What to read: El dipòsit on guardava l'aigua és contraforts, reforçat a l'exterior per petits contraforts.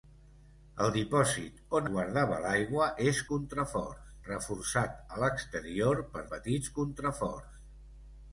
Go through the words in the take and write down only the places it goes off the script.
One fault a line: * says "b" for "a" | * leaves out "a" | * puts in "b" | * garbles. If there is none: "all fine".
all fine